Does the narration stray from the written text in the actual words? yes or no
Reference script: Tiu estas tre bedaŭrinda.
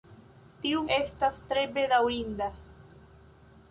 no